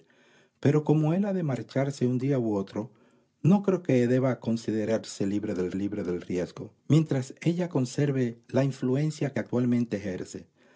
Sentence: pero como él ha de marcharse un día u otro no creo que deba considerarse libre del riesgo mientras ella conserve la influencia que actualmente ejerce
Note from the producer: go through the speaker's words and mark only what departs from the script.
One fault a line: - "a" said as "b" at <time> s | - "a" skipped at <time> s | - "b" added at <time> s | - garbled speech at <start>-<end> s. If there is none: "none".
- "libre del" added at 5.7 s